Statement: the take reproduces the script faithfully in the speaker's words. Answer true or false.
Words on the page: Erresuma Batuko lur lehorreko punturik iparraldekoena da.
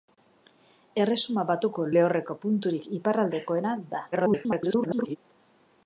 false